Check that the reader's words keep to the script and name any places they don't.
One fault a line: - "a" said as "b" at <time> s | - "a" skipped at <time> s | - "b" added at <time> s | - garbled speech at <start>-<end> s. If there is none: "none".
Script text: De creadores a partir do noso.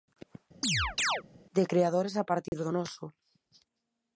none